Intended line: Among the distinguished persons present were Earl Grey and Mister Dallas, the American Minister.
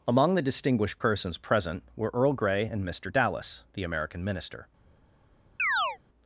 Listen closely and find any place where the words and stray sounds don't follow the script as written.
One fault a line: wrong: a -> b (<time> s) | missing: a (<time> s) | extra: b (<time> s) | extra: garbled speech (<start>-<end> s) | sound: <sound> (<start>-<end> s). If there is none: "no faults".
sound: chirp (5.6-6.0 s)